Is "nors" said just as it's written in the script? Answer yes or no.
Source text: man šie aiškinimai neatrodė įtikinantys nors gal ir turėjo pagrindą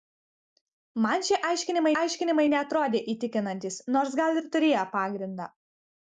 yes